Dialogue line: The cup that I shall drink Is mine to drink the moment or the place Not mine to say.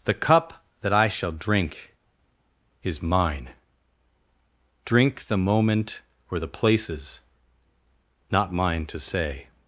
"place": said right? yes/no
no